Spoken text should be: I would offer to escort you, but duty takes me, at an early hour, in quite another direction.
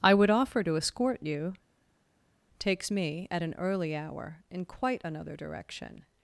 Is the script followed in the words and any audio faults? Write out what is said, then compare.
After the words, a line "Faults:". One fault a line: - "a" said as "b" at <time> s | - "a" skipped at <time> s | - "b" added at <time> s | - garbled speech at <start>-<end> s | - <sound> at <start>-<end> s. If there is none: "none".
I would offer to escort you, takes me, at an early hour, in quite another direction.
Faults:
- "but duty" skipped at 1.5 s